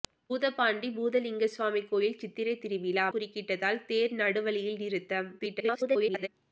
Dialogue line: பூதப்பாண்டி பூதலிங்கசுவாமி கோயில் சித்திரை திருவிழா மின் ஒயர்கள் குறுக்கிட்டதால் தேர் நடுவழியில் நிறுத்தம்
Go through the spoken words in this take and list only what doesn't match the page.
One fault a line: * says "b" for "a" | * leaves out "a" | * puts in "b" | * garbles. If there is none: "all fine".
* leaves out "மின் ஒயர்கள்"
* garbles